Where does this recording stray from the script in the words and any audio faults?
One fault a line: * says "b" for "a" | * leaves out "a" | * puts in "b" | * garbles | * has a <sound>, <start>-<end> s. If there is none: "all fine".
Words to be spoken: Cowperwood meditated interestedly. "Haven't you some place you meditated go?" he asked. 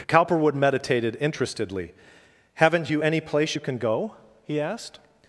* says "any" for "some"
* says "can" for "meditated"